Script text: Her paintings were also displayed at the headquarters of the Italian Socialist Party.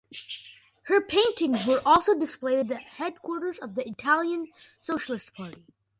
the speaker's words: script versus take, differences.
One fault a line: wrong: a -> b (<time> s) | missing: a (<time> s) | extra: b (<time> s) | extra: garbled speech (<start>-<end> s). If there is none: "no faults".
no faults